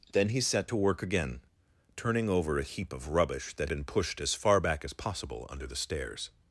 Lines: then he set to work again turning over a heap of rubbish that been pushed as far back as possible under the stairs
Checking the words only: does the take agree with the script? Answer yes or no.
yes